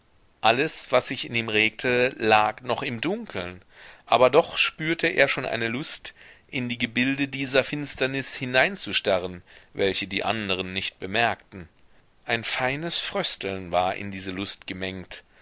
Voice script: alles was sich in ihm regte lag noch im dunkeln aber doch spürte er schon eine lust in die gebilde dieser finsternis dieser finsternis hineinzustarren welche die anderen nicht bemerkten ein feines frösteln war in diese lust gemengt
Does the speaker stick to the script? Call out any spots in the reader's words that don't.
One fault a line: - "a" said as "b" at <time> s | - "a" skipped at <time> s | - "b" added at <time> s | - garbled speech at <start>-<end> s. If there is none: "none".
- "dieser finsternis" skipped at 8.3 s